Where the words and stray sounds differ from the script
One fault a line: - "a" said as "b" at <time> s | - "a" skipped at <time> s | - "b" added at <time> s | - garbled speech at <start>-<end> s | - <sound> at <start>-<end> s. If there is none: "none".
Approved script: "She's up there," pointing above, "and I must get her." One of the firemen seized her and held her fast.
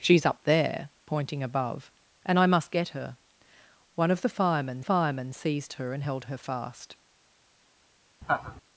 - "firemen" added at 4.8 s
- laugh at 8.2-8.6 s